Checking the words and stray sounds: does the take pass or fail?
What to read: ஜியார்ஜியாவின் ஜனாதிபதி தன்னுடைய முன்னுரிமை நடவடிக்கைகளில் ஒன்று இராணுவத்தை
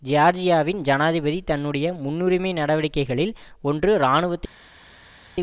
pass